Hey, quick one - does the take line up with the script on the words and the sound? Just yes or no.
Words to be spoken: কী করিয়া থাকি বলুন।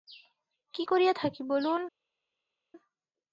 yes